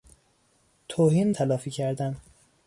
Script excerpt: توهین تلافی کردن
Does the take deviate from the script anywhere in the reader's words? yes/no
no